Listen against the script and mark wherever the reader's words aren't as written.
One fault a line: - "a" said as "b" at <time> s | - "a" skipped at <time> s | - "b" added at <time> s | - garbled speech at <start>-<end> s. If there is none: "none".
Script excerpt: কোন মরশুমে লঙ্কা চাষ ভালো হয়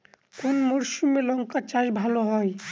none